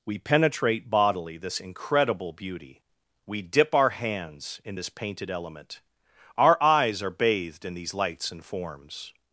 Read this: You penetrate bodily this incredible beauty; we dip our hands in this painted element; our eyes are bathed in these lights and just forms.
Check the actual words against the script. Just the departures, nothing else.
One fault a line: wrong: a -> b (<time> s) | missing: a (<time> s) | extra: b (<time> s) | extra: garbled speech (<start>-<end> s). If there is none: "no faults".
wrong: You -> We (0.1 s)
missing: just (8.4 s)